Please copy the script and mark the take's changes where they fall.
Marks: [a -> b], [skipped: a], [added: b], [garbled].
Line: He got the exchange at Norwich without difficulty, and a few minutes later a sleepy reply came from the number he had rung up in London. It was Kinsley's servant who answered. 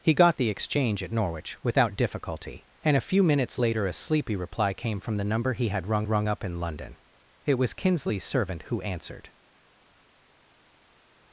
He got the exchange at Norwich without difficulty, and a few minutes later a sleepy reply came from the number he had rung [added: rung] up in London. It was Kinsley's servant who answered.